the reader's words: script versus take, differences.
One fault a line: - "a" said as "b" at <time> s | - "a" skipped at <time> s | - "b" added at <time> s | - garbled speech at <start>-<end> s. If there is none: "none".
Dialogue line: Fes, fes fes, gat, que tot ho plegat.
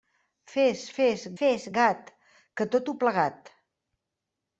none